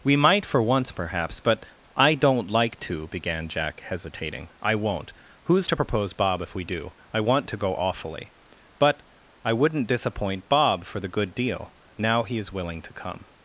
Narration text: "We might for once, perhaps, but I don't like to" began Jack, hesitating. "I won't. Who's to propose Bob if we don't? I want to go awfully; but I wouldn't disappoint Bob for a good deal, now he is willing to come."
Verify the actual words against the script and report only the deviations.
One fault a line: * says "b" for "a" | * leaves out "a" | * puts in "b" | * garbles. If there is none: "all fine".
* says "do" for "don't"
* says "the" for "a"